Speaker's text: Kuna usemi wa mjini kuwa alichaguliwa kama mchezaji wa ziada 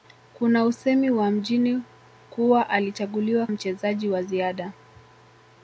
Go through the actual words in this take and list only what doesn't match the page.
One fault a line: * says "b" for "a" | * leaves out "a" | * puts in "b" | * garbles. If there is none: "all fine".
* leaves out "kama"